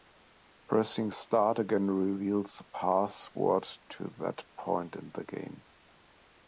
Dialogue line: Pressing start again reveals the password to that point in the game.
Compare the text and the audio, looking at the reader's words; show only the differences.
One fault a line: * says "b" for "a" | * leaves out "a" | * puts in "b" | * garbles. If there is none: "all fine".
all fine